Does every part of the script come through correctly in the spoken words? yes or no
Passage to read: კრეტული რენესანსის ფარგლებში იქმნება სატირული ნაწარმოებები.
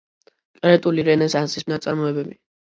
no